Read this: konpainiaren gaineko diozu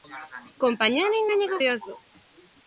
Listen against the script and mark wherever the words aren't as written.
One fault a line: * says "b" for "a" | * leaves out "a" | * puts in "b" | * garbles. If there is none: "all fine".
all fine